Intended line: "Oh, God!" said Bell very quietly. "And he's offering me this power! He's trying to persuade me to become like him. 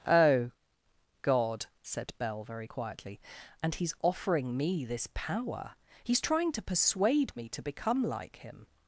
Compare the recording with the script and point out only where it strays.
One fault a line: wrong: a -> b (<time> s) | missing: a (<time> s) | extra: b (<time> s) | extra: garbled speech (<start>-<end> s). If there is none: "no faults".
no faults